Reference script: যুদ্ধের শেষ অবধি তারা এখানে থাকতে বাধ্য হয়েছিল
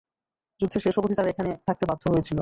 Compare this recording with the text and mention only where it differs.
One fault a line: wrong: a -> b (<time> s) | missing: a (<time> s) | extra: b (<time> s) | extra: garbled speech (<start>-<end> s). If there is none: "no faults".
no faults